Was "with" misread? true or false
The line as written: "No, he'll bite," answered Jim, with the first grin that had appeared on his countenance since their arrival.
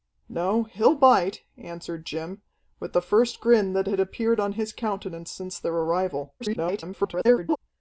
false